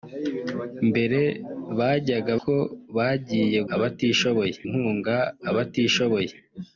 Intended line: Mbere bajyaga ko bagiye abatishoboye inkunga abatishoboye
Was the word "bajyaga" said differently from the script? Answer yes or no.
no